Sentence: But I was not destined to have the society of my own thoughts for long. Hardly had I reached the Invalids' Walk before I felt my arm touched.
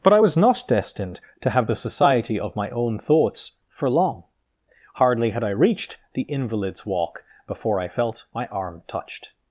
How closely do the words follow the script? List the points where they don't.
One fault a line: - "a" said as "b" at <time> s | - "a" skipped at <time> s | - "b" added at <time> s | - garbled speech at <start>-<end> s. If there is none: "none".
none